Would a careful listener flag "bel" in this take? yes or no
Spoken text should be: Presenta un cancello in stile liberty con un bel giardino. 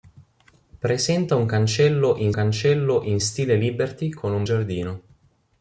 yes